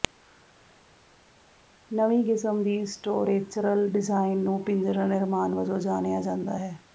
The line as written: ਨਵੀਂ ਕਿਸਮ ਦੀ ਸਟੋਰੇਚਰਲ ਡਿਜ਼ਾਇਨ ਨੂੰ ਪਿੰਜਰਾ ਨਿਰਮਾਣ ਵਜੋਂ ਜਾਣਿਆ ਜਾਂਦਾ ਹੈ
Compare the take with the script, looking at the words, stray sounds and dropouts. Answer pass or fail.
pass